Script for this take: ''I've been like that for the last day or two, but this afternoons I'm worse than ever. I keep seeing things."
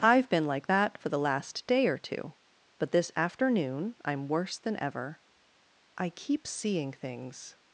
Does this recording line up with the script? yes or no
no